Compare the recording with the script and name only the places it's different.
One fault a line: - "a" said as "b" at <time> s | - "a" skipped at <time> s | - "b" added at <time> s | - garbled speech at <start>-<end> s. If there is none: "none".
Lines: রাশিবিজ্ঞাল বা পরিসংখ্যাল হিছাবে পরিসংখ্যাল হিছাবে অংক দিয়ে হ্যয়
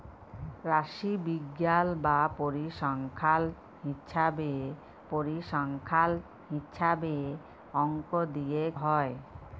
none